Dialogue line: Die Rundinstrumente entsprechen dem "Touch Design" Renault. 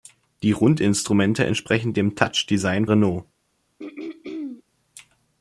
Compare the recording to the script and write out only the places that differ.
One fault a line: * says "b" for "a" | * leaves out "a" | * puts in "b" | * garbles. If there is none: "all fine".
all fine